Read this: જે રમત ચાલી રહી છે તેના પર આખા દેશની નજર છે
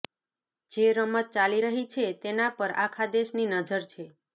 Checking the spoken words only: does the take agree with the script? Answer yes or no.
yes